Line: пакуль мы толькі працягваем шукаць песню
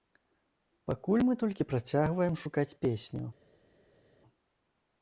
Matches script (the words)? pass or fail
pass